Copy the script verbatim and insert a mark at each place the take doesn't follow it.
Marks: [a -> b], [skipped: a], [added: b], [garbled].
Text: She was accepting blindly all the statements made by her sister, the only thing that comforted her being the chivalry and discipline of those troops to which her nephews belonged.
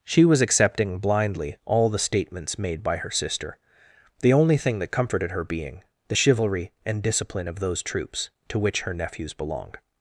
She was accepting blindly all the statements made by her sister, the only thing that comforted her being the chivalry and discipline of those troops to which her nephews belonged.